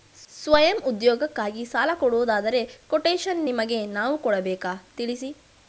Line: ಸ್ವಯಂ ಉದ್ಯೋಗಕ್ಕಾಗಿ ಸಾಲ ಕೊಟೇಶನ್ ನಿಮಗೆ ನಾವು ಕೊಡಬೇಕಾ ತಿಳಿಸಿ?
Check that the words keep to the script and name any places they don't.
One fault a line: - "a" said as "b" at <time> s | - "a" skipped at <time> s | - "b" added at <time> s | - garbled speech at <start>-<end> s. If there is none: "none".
- "ಕೊಡುವುದಾದರೆ" added at 1.9 s